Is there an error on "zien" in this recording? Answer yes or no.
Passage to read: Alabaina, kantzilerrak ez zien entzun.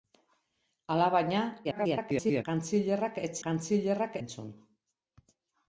yes